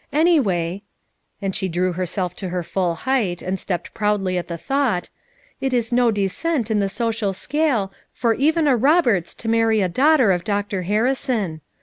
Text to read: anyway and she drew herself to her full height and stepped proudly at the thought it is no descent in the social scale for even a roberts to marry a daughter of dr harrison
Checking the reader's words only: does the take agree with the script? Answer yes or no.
yes